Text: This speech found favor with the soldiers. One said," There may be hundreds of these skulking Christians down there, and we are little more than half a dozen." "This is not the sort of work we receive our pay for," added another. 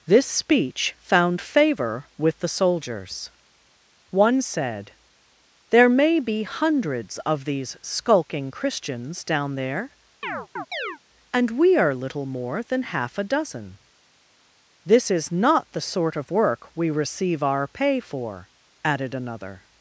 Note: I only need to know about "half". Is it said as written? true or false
true